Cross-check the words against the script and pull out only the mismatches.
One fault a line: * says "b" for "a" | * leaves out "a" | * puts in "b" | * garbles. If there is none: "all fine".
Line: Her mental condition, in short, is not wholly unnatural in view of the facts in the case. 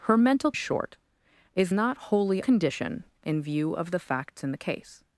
* leaves out "condition in"
* says "condition" for "unnatural"